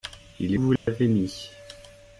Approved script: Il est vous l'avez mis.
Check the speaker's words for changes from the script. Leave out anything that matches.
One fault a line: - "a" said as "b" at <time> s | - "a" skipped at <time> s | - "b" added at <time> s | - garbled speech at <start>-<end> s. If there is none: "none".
none